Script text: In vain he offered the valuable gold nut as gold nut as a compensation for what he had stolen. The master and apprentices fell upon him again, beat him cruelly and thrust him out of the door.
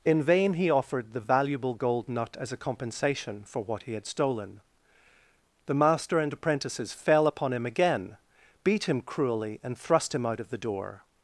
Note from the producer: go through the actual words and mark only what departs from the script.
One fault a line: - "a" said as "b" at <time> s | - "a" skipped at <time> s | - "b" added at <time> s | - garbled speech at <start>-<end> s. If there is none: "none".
- "gold nut as" skipped at 2.5 s